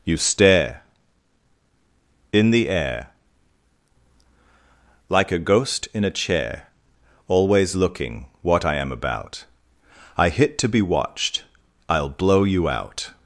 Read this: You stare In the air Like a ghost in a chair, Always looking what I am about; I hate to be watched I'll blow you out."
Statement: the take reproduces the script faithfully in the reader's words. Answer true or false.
false